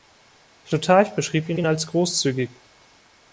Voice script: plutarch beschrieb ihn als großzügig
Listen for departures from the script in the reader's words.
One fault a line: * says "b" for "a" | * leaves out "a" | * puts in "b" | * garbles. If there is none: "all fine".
* puts in "ihn"